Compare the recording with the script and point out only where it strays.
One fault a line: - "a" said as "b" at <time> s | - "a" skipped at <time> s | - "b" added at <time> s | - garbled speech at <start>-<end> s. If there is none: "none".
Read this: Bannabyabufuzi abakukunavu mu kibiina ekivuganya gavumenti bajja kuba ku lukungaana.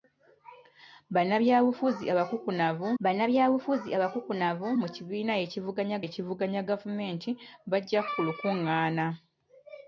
- "bannabyabufuzi abakukunavu" added at 3.0 s
- "ekivuganya" added at 6.0 s
- "kuba" skipped at 8.0 s